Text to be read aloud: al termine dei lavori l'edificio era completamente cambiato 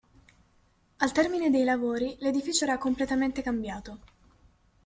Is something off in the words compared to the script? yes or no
no